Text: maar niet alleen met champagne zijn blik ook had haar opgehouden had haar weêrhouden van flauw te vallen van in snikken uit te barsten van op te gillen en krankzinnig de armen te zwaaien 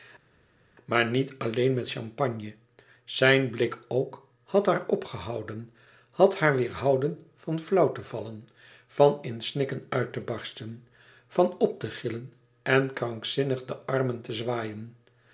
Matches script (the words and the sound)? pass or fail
pass